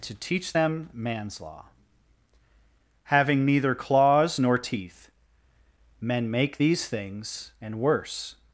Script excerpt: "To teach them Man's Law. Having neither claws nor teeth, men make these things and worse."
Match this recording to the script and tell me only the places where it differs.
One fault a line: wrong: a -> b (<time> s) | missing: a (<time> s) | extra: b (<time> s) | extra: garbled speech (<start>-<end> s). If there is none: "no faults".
no faults